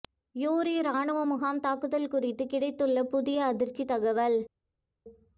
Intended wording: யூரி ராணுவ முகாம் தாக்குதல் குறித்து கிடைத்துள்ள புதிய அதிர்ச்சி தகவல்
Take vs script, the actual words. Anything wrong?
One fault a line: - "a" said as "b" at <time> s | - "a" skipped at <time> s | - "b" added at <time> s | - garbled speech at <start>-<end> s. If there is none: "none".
none